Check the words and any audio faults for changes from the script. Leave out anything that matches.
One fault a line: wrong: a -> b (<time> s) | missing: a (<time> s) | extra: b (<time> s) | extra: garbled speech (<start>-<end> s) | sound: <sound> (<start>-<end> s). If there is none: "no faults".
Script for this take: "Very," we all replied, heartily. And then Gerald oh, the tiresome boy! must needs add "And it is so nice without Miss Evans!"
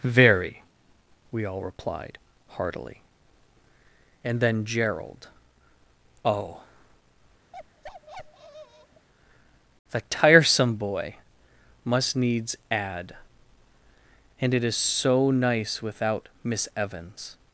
sound: bark (7.5-9.1 s)